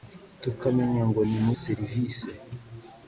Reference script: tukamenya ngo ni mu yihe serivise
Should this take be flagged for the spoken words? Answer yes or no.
yes